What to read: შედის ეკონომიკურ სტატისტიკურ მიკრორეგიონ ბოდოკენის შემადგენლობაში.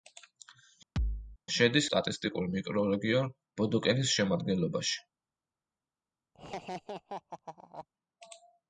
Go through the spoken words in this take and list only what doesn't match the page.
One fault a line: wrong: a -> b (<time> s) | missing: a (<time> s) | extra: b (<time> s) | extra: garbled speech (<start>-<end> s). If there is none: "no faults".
missing: ეკონომიკურ (1.9 s)